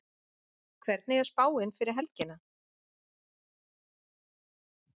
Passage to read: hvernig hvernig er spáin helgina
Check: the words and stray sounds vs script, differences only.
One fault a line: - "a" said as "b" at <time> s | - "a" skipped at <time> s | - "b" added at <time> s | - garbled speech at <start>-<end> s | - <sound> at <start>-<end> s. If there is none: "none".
- "hvernig" skipped at 1.2 s
- "fyrir" added at 1.8 s